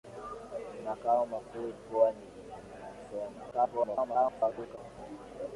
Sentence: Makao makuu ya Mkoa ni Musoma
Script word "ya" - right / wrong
wrong